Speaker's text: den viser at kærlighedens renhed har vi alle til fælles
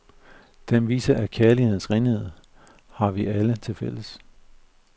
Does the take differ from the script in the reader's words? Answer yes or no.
no